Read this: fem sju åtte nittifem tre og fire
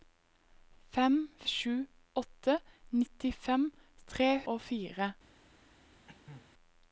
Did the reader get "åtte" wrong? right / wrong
right